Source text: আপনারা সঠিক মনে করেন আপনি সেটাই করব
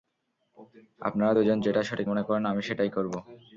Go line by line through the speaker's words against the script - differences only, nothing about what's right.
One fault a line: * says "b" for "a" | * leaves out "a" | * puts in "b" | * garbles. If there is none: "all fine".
* puts in "দুজন যেটা"
* says "আমি" for "আপনি"